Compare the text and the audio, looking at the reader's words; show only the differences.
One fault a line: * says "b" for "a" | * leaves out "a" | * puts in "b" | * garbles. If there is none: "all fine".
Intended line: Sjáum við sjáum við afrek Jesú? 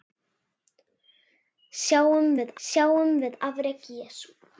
all fine